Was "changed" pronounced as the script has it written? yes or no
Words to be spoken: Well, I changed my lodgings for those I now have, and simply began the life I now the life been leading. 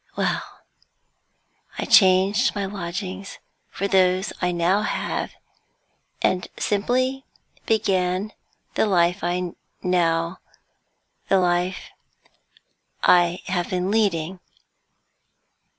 yes